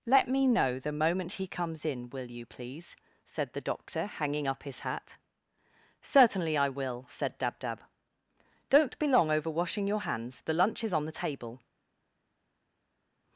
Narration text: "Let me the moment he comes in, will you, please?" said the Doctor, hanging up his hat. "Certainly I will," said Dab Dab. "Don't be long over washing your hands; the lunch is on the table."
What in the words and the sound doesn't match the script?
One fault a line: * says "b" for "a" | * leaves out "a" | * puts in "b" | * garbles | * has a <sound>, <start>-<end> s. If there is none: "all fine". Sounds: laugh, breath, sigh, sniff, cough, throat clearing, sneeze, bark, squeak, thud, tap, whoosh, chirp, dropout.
* puts in "know"